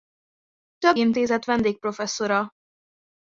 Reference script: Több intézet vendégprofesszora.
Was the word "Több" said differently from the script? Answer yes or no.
no